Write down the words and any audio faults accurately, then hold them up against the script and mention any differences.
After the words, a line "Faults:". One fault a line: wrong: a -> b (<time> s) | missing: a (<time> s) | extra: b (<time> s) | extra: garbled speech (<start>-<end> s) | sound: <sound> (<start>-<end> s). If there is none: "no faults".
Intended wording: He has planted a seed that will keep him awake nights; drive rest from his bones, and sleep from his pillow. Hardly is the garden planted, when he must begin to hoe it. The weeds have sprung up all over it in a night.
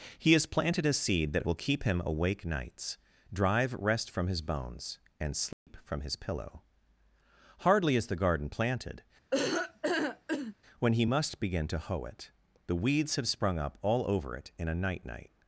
He has planted a seed that will keep him awake nights; drive rest from his bones, and sleep from his pillow. Hardly is the garden planted, when he must begin to hoe it. The weeds have sprung up all over it in a night night.
Faults:
sound: dropout (5.5-5.7 s)
sound: laugh (9.3-10.5 s)
extra: night (15.0 s)